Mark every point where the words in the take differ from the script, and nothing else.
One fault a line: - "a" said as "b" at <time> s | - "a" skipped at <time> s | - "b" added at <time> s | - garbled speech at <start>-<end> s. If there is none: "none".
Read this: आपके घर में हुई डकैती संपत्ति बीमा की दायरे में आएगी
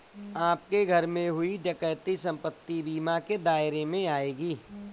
- "की" said as "के" at 3.2 s